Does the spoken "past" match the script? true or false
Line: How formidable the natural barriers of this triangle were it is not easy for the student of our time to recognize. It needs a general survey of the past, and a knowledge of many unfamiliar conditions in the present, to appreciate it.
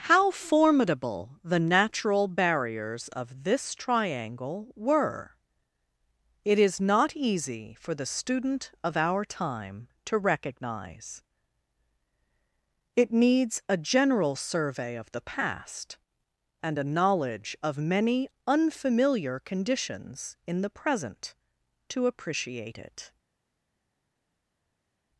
true